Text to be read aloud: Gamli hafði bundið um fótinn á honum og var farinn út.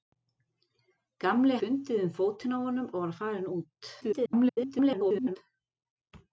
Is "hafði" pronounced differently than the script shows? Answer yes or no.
yes